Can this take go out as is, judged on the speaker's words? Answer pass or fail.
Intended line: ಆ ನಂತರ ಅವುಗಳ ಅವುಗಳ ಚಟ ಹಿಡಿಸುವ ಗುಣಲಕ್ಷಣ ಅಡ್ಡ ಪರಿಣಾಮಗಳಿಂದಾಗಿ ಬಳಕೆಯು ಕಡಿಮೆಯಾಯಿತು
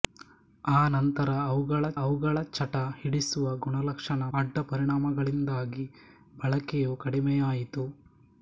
pass